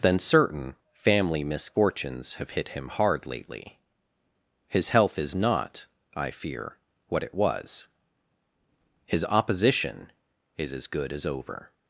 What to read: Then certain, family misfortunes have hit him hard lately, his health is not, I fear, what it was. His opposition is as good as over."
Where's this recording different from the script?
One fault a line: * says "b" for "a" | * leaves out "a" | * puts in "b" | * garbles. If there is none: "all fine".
all fine